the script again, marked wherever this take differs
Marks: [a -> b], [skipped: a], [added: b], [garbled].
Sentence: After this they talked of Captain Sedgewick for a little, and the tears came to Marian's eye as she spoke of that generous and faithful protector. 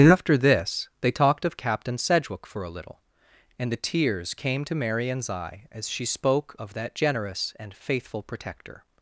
After this they talked of Captain Sedgewick for a little, and the tears came to Marian's eye as she spoke of that generous and faithful protector.